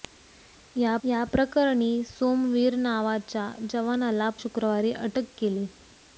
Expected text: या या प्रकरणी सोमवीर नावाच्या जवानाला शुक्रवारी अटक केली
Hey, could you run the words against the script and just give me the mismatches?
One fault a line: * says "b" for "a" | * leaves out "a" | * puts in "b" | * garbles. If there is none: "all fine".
all fine